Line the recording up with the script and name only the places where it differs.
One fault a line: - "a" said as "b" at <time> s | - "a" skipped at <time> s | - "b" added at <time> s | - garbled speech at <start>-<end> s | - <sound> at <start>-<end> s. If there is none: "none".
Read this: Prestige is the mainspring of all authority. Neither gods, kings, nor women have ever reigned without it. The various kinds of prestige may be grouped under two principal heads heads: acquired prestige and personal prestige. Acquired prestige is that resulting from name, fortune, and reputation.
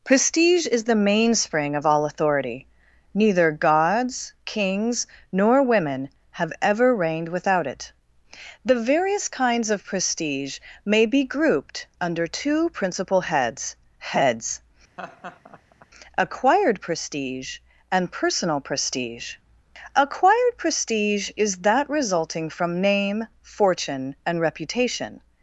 - laugh at 15.0-15.9 s